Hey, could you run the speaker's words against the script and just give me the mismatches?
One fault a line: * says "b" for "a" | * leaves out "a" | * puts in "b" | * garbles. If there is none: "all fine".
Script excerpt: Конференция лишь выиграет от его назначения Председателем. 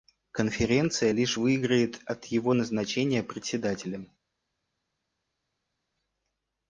all fine